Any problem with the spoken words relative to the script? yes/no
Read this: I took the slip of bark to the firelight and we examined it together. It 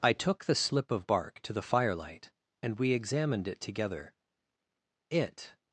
no